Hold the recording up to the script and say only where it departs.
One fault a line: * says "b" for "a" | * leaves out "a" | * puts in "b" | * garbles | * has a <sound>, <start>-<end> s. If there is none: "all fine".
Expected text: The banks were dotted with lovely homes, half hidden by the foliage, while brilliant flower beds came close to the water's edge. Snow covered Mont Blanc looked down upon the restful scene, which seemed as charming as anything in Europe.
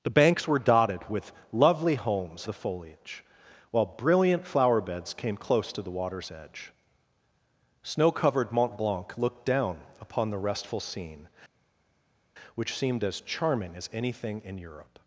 * leaves out "half hidden by"